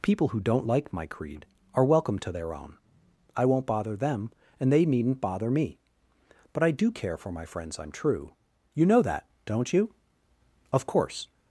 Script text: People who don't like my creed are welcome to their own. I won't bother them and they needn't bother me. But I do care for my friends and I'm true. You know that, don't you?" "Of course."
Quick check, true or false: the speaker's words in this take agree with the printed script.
false